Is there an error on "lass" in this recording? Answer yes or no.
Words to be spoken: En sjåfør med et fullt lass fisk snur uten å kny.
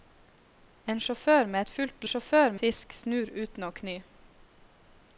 yes